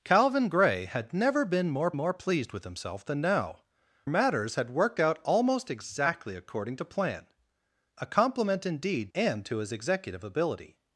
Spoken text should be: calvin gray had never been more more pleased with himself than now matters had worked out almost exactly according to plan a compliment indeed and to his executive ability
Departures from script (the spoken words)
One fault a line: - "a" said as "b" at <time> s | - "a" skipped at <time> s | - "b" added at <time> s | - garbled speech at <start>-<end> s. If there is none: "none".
none